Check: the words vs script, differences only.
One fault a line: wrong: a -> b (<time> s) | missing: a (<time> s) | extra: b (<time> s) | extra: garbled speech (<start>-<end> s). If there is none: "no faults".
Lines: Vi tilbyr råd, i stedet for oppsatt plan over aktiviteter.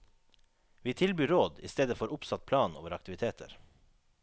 no faults